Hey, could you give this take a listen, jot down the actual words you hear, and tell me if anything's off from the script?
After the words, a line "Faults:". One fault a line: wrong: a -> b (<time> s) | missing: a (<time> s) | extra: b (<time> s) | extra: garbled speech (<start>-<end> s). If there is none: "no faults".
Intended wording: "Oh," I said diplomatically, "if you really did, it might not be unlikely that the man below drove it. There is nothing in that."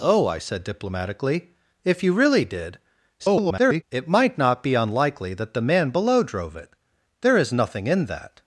"Oh," I said diplomatically, "if you really did, [garbled] it might not be unlikely that the man below drove it. There is nothing in that."
Faults:
extra: garbled speech (3.2-3.8 s)